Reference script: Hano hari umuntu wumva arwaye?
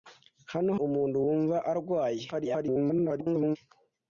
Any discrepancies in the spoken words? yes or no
yes